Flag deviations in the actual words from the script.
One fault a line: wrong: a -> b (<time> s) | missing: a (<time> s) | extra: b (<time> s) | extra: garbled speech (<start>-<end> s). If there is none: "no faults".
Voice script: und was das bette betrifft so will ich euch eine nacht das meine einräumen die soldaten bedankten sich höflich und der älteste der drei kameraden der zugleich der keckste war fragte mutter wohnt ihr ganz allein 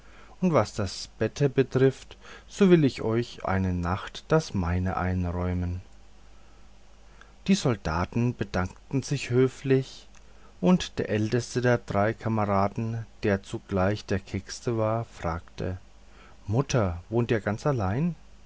no faults